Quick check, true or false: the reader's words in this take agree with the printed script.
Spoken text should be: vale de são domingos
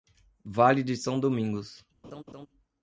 true